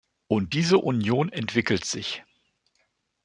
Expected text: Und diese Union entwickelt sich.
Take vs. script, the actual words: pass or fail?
pass